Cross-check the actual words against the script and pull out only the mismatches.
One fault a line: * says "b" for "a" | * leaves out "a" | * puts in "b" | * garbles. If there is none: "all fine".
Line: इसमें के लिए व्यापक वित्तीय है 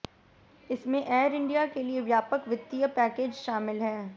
* puts in "एयर इंडिया"
* puts in "पैकेज शामिल"